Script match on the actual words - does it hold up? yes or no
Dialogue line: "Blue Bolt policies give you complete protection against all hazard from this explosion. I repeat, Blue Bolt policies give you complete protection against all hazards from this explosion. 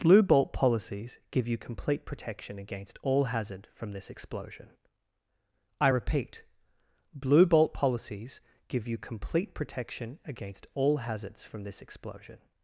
yes